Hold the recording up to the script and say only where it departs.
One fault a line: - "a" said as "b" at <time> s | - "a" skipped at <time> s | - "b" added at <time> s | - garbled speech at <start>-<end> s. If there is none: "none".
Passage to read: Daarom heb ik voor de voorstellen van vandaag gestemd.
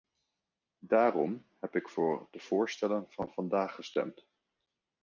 none